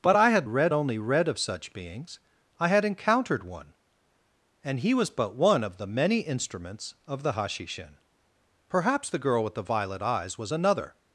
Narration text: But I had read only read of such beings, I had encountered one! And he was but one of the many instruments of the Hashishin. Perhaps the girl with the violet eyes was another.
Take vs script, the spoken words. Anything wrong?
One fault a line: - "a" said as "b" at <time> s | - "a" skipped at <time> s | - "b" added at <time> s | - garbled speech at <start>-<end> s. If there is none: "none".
none